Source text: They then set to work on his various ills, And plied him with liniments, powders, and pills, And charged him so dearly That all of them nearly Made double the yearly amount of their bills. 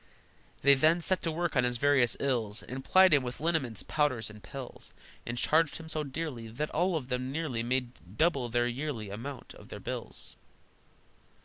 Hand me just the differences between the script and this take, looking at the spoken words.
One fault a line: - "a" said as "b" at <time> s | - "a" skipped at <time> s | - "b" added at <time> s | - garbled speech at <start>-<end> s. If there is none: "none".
none